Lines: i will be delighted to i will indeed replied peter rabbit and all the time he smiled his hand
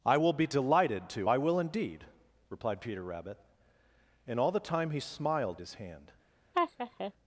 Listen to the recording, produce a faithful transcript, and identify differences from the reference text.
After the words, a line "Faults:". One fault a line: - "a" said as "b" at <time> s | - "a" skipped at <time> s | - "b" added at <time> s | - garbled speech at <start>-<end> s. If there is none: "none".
i will be delighted to i will indeed replied peter rabbit and all the time he smiled his hand
Faults:
none